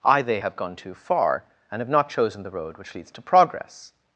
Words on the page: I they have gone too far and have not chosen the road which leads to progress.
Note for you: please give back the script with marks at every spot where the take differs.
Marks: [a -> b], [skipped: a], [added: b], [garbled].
I they have gone too far and have not chosen the road which leads to progress.